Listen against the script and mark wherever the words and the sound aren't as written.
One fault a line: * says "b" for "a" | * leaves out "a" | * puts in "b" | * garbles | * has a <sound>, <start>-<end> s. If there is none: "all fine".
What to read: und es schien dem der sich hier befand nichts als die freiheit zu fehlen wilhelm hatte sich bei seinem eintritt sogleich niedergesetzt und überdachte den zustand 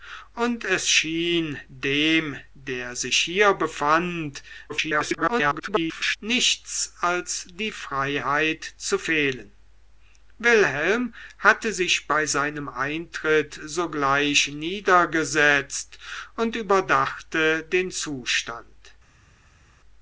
* garbles